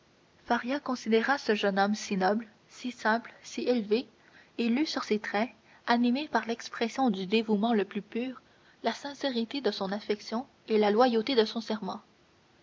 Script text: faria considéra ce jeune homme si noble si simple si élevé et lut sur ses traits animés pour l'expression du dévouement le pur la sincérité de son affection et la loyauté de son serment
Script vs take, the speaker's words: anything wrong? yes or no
yes